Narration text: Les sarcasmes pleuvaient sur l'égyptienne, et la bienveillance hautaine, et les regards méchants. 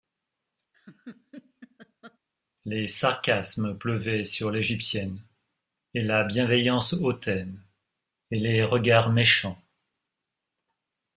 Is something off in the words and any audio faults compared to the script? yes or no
yes